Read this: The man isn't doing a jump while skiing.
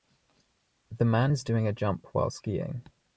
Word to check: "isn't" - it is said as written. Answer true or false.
false